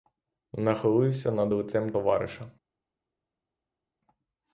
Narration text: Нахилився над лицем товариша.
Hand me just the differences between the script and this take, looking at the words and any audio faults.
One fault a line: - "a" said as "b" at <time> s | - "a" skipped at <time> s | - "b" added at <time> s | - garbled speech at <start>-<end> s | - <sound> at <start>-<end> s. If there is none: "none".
none